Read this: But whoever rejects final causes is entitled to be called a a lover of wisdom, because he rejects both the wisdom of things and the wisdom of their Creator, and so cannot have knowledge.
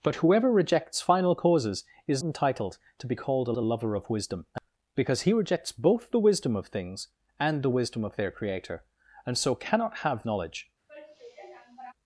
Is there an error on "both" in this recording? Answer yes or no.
no